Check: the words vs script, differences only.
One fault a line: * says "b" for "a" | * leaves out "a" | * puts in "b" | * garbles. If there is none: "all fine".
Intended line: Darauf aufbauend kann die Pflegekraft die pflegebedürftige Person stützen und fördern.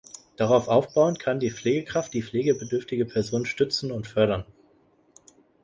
all fine